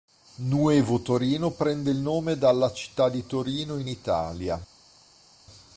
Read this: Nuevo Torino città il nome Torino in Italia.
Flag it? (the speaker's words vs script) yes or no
yes